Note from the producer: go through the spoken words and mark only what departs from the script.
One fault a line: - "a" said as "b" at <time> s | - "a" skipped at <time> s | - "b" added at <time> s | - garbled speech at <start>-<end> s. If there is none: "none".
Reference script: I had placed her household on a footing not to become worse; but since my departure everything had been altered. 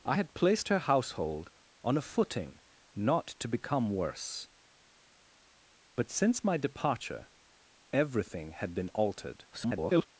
- garbled speech at 9.5-10.1 s